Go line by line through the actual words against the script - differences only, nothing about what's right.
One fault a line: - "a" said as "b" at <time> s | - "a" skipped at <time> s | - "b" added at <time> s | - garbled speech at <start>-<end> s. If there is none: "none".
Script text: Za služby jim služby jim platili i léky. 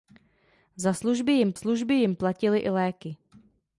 none